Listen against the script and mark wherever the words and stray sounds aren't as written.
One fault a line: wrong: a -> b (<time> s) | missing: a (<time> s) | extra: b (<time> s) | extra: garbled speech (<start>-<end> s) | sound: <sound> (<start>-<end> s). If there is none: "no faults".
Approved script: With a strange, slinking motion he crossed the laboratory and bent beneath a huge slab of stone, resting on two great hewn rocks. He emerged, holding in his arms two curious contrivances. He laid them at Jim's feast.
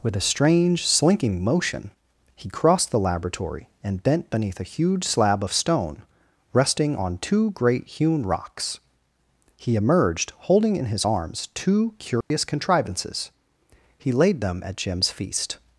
sound: dropout (12.2-12.3 s)